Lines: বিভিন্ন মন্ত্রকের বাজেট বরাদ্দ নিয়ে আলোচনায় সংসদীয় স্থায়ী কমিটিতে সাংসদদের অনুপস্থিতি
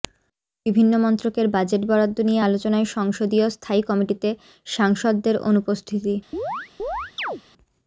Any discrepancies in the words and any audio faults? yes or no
yes